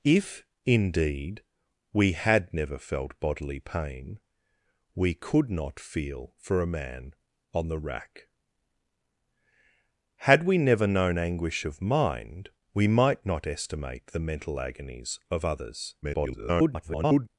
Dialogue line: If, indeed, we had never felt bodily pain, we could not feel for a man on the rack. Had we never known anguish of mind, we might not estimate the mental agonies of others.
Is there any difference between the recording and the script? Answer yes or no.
yes